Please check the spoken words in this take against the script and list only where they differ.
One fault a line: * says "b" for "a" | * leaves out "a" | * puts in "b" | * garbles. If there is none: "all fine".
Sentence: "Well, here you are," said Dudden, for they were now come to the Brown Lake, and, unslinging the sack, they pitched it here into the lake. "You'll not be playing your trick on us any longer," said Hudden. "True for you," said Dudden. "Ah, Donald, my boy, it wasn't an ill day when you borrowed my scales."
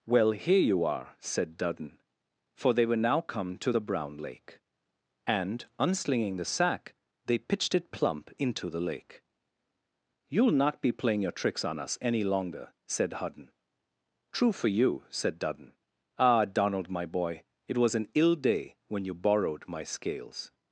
* says "plump" for "here"
* says "tricks" for "trick"
* says "was" for "wasn't"